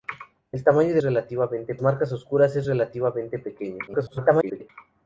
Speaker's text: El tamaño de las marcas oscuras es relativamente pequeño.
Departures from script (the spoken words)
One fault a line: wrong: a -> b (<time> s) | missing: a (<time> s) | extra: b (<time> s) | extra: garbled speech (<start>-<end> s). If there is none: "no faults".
wrong: las -> relativamente (1.0 s)
extra: garbled speech (3.9-4.7 s)